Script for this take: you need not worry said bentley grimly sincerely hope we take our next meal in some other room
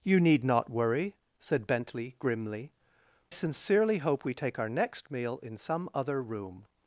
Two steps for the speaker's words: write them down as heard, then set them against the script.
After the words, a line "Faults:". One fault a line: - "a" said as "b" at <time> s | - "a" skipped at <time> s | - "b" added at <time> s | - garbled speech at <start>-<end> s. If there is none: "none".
you need not worry said bentley grimly sincerely hope we take our next meal in some other room
Faults:
none